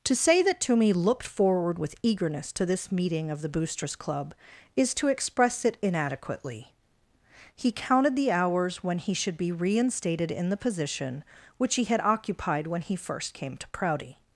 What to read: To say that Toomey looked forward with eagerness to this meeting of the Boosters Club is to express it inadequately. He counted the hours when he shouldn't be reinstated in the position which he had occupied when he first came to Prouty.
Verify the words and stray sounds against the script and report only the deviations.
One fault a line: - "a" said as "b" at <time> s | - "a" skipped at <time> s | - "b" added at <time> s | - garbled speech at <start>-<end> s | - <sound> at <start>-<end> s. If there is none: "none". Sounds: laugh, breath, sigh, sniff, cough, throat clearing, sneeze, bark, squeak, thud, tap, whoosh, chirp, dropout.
- "shouldn't" said as "should" at 9.1 s